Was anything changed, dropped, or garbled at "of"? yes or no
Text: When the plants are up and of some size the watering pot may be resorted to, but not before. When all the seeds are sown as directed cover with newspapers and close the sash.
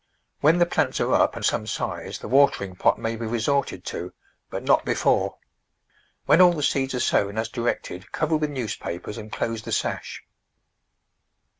yes